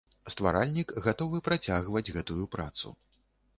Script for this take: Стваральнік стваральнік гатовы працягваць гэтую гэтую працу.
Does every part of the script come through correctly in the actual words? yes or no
no